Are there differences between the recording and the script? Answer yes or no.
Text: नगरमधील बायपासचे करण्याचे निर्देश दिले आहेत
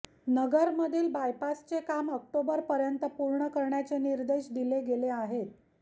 yes